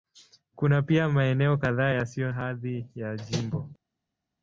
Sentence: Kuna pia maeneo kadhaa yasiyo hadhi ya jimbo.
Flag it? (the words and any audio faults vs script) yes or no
no